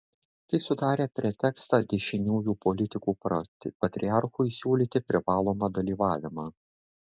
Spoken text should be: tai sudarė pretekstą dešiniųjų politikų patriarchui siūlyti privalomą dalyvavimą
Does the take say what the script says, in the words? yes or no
yes